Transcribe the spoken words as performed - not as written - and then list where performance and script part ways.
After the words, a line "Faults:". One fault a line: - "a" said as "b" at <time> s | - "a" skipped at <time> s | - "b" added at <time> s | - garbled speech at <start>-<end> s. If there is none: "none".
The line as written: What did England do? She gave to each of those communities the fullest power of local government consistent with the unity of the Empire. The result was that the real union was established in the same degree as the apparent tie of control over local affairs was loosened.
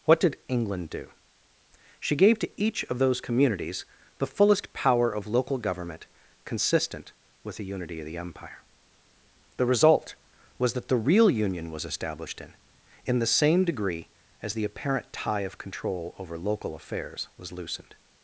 What did England do? She gave to each of those communities the fullest power of local government consistent with the unity of the Empire. The result was that the real union was established in in the same degree as the apparent tie of control over local affairs was loosened.
Faults:
- "in" added at 13.0 s